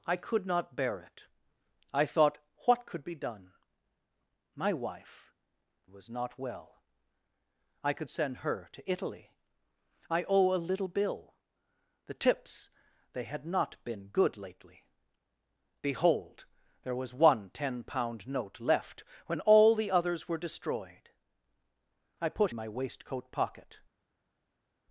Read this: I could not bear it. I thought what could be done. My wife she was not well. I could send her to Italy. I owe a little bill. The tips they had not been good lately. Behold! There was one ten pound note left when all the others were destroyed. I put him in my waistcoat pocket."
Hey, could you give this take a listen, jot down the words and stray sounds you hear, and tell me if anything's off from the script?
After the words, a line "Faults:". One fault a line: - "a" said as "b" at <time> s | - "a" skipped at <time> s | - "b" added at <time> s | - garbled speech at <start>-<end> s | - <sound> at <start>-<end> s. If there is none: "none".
I could not bear it. I thought what could be done. My wife was not well. I could send her to Italy. I owe a little bill. The tips they had not been good lately. Behold! There was one ten pound note left when all the others were destroyed. I put my waistcoat pocket."
Faults:
- "she" skipped at 5.3 s
- "him in" skipped at 22.5 s